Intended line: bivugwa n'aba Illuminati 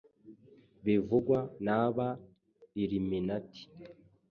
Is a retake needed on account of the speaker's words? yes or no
no